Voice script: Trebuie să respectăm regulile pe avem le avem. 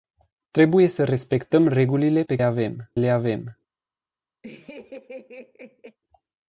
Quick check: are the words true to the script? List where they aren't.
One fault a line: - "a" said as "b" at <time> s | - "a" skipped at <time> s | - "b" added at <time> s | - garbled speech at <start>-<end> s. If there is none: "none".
none